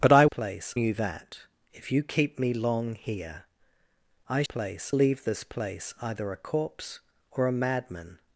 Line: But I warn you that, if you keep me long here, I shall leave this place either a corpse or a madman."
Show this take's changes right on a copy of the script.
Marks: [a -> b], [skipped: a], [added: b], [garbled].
But I [warn -> place] you that, if you keep me long here, I [shall -> place] leave this place either a corpse or a madman."